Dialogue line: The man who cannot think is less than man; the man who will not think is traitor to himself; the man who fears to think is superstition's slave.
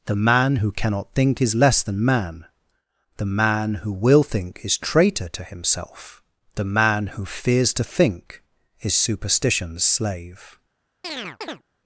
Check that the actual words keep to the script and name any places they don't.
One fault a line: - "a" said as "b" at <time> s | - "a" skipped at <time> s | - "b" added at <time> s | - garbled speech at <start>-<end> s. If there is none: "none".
- "not" skipped at 4.2 s